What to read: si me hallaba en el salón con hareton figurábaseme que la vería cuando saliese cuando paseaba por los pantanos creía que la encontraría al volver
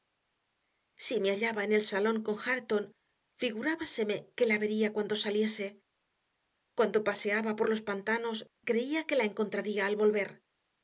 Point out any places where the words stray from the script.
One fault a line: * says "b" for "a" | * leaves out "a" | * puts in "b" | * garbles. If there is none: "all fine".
all fine